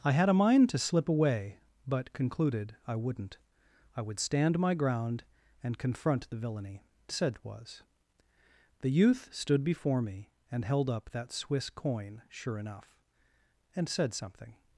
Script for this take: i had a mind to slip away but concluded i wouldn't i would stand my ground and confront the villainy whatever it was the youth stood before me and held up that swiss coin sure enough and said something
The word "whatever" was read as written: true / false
false